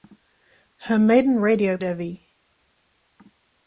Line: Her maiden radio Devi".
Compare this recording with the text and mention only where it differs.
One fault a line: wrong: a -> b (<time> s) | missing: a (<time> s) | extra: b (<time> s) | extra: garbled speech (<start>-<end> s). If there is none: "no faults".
no faults